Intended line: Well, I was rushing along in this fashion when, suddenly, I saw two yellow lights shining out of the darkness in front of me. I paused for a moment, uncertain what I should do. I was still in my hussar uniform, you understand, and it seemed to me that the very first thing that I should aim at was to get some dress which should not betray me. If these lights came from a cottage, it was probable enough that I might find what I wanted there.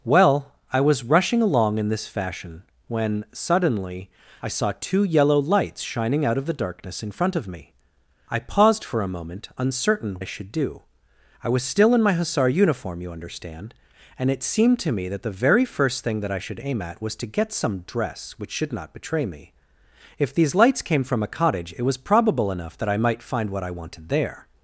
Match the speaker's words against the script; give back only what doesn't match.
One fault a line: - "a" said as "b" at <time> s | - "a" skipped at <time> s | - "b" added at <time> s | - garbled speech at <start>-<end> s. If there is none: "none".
- "what" skipped at 10.2 s